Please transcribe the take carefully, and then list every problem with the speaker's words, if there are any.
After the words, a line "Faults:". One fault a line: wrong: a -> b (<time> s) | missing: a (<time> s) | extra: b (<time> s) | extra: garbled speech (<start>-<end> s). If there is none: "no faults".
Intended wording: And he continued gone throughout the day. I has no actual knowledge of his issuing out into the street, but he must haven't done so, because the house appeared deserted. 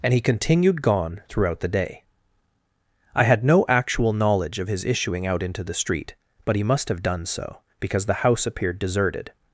And he continued gone throughout the day. I had no actual knowledge of his issuing out into the street, but he must have done so, because the house appeared deserted.
Faults:
wrong: has -> had (3.2 s)
wrong: haven't -> have (6.9 s)